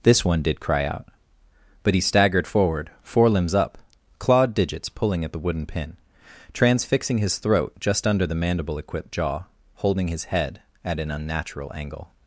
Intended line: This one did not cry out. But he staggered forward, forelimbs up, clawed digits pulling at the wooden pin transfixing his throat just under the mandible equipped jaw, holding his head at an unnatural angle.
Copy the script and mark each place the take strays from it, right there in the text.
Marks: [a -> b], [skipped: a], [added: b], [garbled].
This one did [skipped: not] cry out. But he staggered forward, forelimbs up, clawed digits pulling at the wooden pin transfixing his throat just under the mandible equipped jaw, holding his head at an unnatural angle.